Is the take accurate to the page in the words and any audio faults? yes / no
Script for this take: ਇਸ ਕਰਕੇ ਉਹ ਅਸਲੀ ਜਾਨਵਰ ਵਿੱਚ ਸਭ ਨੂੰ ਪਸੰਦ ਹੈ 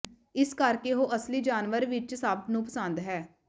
yes